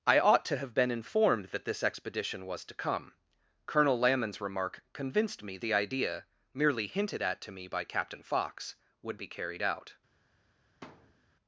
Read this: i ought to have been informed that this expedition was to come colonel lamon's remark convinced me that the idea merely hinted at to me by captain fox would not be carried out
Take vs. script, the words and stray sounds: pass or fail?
fail